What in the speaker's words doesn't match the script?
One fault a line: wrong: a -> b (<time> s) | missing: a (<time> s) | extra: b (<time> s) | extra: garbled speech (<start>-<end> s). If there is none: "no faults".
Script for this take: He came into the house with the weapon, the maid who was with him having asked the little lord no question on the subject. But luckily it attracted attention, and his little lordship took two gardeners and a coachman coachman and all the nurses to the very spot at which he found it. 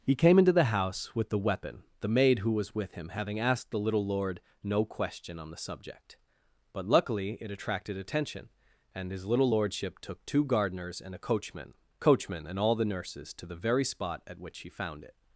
no faults